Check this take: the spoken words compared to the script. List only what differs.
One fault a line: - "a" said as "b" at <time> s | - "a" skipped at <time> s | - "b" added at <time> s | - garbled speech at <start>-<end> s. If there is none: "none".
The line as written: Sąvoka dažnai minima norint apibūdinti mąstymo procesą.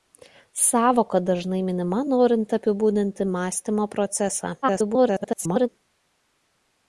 - garbled speech at 4.6-5.7 s